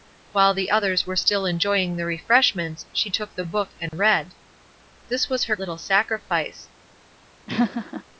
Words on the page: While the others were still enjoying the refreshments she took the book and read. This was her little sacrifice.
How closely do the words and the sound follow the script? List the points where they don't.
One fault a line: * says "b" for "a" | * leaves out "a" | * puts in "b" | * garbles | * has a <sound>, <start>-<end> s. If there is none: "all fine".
* has a dropout, 3.9-3.9 s
* has a laugh, 7.5-8.0 s